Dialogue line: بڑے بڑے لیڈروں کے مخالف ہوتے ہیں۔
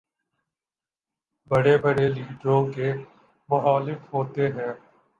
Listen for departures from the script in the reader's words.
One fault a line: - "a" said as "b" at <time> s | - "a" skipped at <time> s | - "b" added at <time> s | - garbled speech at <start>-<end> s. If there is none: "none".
none